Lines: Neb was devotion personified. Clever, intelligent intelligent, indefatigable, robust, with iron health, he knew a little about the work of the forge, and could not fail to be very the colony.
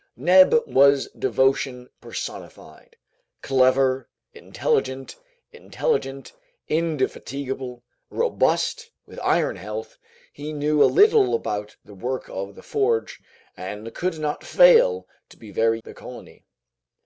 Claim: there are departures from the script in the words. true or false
false